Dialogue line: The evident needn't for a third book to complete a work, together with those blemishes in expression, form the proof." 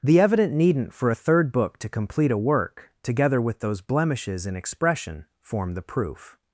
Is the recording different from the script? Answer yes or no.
no